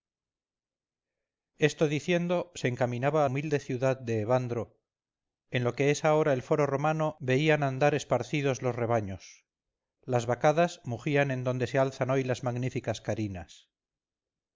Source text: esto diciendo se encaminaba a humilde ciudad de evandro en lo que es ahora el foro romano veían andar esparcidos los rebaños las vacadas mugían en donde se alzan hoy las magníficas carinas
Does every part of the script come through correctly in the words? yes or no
yes